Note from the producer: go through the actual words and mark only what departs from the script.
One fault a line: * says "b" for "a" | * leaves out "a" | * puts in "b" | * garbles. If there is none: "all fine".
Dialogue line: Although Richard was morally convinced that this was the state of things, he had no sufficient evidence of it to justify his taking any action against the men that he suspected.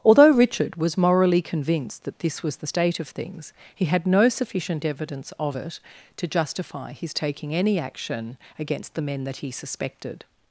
all fine